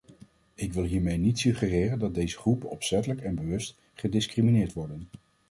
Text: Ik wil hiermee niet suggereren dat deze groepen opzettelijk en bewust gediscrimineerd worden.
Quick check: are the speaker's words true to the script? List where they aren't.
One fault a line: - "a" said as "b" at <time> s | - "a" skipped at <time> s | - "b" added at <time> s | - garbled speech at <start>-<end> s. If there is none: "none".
none